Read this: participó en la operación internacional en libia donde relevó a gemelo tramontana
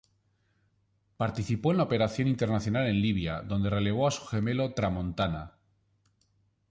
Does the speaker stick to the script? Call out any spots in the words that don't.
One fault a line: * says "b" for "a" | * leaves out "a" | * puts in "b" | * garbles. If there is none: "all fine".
* puts in "su"